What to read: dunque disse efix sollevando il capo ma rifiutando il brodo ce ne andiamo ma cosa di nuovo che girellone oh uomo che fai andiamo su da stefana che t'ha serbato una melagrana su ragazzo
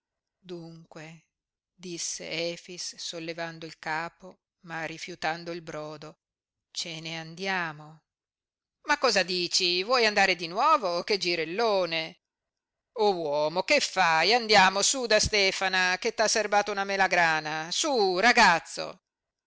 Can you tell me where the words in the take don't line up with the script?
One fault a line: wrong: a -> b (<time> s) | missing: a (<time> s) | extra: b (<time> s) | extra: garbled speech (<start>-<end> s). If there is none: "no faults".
extra: dici vuoi andare (9.2 s)